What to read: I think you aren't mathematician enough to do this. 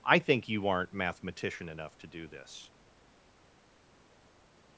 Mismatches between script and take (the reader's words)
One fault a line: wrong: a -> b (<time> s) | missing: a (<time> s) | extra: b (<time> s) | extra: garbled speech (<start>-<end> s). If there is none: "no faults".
no faults